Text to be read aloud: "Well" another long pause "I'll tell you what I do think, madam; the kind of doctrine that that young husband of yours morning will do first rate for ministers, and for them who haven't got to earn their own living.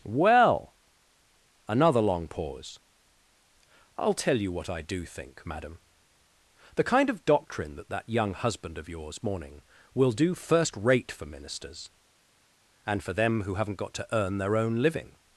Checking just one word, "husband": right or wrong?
right